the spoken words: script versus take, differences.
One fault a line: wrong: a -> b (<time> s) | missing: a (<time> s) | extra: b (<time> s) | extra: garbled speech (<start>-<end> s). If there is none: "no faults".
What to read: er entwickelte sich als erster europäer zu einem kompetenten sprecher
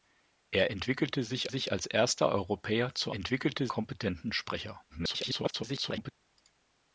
extra: sich (1.5 s)
wrong: einem -> entwickelte (3.1 s)
extra: garbled speech (4.9-6.1 s)